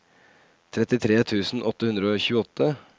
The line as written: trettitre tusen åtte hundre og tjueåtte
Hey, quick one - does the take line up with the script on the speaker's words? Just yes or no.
yes